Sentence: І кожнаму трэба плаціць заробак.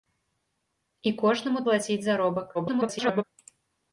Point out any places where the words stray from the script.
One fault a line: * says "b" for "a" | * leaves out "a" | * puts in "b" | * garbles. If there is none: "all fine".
* leaves out "трэба"
* garbles